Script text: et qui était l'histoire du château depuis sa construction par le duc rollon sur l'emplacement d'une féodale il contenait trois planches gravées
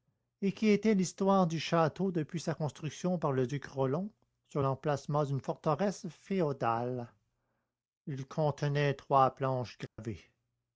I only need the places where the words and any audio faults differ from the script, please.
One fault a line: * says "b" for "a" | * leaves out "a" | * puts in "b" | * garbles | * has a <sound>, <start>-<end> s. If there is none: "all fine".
* puts in "forteresse"
* has a dropout, 9.9-10.0 s